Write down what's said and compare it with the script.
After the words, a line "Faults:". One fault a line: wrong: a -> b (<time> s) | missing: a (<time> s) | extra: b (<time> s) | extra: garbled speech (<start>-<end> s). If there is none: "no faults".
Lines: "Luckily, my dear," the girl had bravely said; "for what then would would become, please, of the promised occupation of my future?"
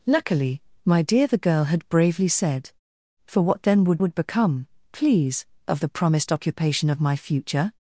"Luckily, my dear," the girl had bravely said; "for what then would would become, please, of the promised occupation of my future?"
Faults:
no faults